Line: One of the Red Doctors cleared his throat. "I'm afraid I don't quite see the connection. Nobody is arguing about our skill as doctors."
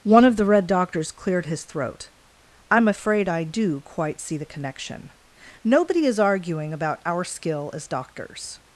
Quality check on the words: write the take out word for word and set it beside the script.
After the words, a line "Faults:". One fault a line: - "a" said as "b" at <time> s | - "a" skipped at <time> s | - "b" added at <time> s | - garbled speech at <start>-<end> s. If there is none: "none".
One of the Red Doctors cleared his throat. "I'm afraid I do quite see the connection. Nobody is arguing about our skill as doctors."
Faults:
- "don't" said as "do" at 3.4 s